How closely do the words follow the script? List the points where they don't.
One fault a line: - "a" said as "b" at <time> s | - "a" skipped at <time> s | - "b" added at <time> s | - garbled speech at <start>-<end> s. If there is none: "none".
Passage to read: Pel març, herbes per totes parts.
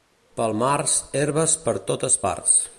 none